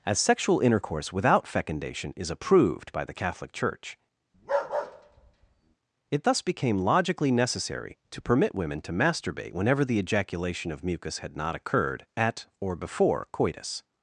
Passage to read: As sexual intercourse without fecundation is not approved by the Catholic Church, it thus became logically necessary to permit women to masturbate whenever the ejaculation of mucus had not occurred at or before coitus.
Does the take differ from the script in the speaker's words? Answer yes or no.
yes